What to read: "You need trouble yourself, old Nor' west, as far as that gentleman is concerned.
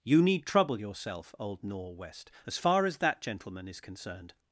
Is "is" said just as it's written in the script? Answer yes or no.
yes